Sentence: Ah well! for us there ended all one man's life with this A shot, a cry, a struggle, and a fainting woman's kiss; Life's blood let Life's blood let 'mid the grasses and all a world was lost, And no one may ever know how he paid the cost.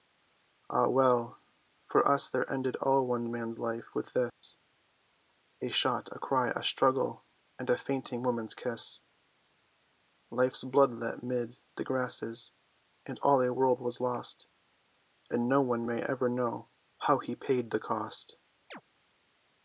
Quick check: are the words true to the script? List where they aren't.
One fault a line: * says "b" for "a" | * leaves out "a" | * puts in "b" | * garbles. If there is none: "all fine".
* leaves out "Life's blood let"